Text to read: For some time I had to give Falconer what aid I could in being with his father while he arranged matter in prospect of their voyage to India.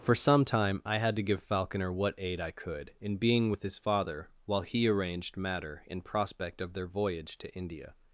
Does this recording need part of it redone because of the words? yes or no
no